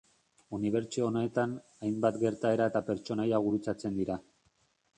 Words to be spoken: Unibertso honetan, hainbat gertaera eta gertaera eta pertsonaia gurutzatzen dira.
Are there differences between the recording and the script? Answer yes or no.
yes